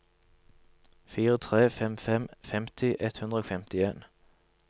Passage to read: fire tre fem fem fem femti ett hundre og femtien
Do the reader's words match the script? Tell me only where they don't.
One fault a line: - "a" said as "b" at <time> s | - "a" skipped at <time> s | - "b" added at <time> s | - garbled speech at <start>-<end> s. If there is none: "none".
- "fem" skipped at 2.3 s